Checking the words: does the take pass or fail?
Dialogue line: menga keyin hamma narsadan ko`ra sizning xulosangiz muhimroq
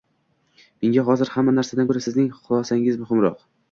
fail